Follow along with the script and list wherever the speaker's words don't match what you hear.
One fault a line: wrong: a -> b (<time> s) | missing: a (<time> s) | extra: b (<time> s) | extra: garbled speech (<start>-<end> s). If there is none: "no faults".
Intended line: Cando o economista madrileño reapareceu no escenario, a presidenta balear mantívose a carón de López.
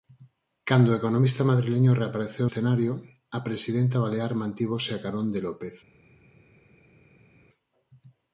missing: no (2.5 s)